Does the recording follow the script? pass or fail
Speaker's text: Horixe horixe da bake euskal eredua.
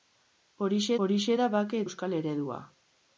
pass